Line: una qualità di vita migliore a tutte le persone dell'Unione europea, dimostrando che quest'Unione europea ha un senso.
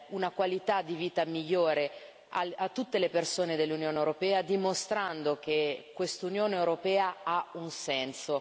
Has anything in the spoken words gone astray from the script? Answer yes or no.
no